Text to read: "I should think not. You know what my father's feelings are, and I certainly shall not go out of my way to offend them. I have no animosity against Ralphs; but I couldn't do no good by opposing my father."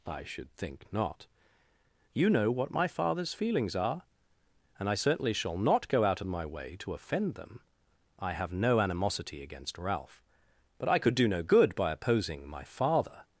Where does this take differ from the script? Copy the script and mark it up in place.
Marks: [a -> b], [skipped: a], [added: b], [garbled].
"I should think not. You know what my father's feelings are, and I certainly shall not go out of my way to offend them. I have no animosity against [Ralphs; -> Ralph] but I [couldn't -> could] do no good by opposing my father."